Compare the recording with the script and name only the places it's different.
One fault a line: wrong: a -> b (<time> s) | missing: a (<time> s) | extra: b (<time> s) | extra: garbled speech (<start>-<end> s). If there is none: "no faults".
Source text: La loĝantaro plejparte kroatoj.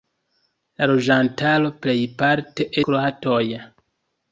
no faults